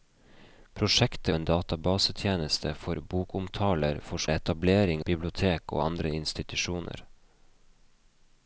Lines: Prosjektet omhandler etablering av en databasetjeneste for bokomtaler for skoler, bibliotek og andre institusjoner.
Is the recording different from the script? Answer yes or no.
yes